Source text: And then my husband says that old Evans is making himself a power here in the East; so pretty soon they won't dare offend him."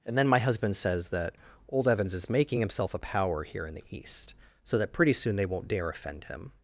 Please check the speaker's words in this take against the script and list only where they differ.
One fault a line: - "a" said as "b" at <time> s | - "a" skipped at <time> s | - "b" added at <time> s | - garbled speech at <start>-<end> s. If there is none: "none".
- "that" added at 4.8 s